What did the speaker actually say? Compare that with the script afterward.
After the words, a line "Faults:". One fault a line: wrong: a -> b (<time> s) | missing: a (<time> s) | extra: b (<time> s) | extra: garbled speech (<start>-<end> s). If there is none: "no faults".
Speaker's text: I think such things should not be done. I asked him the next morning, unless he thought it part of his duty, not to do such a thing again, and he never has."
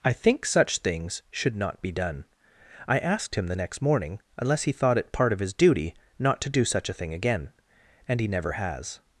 I think such things should not be done. I asked him the next morning, unless he thought it part of his duty, not to do such a thing again, and he never has."
Faults:
no faults